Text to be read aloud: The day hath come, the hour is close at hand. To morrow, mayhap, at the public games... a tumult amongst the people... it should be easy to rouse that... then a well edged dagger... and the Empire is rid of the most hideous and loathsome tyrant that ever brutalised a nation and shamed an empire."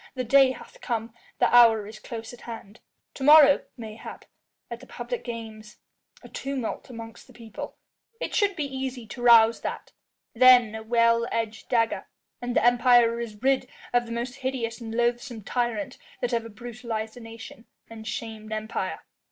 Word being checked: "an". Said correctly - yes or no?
no